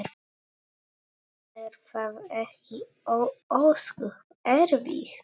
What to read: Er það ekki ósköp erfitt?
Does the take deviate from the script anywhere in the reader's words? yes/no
no